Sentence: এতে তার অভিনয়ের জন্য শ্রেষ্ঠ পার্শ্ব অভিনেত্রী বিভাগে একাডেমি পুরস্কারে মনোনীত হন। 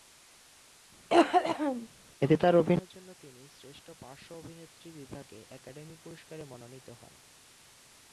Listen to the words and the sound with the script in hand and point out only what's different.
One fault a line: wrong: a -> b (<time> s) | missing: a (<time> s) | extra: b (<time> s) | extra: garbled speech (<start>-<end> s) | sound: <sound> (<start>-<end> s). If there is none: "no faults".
sound: cough (1.1-1.9 s)
extra: তিনি (3.1 s)